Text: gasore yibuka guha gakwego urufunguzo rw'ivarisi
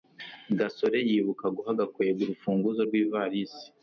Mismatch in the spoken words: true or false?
false